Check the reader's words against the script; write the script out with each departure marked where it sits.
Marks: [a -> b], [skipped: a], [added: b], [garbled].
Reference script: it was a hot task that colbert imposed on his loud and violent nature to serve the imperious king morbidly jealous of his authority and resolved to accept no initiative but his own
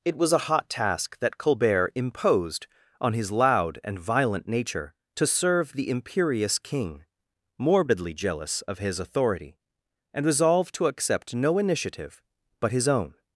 it was a hot task that colbert imposed on his loud and violent nature to serve the imperious king morbidly jealous of his authority and resolved to accept no initiative but his own